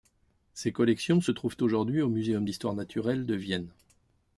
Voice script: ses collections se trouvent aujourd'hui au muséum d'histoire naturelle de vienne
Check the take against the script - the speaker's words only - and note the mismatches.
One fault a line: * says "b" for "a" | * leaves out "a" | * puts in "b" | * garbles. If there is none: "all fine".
all fine